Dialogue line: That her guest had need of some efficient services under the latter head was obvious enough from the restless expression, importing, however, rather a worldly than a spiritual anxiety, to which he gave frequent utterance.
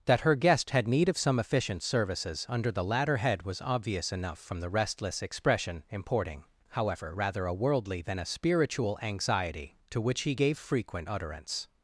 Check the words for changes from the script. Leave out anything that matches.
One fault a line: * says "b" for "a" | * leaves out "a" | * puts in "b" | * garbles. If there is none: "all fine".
all fine